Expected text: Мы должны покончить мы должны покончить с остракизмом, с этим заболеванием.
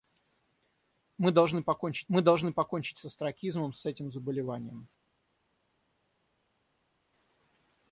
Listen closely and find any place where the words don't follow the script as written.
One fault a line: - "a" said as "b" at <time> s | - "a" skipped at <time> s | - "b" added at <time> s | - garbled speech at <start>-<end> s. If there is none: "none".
none